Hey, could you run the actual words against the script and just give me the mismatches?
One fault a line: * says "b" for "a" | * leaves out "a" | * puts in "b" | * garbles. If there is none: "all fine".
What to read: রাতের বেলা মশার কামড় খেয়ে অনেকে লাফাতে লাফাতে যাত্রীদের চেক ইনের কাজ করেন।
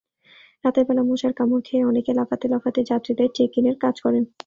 all fine